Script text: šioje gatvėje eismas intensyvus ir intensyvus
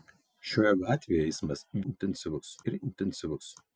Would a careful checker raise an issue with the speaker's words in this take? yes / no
no